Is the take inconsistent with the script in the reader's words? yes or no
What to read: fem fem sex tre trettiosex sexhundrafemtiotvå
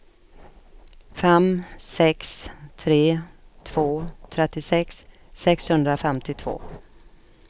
yes